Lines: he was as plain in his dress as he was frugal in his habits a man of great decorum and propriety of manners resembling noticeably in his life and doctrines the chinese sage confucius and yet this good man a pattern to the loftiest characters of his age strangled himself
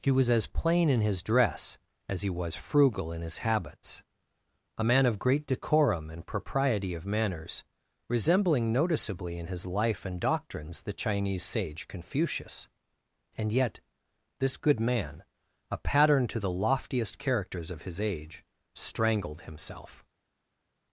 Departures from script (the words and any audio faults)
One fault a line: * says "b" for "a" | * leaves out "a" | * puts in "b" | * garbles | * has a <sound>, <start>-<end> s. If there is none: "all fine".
all fine